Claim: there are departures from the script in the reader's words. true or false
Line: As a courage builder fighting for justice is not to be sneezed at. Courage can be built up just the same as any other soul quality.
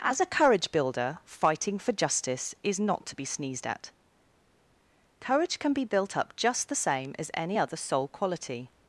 false